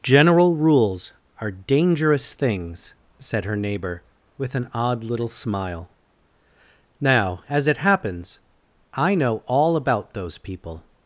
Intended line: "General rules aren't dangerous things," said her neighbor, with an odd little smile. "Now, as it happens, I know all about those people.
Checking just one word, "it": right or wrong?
right